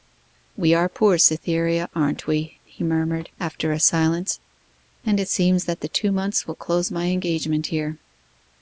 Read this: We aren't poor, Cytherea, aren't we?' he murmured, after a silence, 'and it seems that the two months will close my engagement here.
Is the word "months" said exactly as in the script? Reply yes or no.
yes